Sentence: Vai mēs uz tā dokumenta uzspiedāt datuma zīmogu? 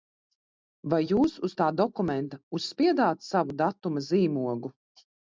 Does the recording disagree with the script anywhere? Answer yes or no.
yes